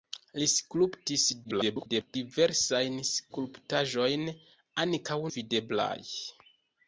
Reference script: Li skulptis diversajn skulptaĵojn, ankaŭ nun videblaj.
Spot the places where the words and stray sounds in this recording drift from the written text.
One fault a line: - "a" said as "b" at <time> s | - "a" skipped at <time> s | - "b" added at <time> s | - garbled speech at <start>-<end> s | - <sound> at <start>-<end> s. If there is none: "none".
- garbled speech at 1.4-2.2 s
- "nun" skipped at 5.2 s